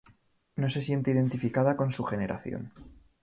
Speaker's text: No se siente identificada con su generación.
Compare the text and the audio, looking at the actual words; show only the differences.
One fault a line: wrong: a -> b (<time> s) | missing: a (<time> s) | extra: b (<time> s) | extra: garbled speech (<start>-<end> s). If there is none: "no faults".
no faults